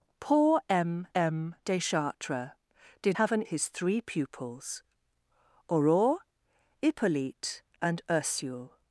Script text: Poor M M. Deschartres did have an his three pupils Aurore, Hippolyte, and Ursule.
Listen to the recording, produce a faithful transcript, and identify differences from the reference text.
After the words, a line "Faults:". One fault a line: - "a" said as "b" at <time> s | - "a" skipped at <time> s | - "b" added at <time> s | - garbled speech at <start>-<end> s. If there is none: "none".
Poor M M. Deschartres did have an his three pupils Aurore, Hippolyte, and Ursule.
Faults:
none